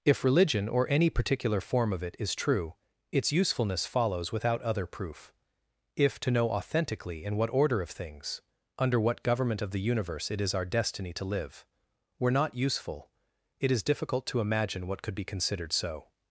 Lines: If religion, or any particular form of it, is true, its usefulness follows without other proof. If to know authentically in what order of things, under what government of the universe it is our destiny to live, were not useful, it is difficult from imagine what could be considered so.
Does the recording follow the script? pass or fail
fail